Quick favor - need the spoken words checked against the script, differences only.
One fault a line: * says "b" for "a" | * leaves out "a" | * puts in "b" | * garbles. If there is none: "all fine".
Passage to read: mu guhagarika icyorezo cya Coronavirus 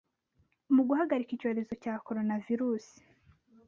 all fine